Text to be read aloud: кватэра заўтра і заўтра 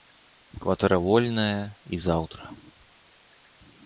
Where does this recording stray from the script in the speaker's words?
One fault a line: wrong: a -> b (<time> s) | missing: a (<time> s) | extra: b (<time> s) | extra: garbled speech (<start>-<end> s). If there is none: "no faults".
wrong: заўтра -> вольная (1.1 s)